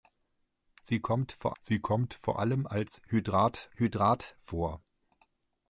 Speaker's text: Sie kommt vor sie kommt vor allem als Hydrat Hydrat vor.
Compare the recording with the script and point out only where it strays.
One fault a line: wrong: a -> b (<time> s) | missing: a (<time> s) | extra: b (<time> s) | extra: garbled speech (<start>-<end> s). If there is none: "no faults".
no faults